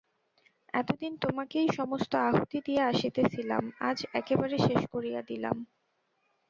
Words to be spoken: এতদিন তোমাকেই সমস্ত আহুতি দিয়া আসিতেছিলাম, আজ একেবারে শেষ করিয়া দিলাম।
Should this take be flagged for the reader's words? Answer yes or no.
no